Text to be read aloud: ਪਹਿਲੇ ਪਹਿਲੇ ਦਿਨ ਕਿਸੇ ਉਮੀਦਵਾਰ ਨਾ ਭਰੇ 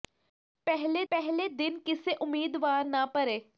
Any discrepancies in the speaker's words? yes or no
no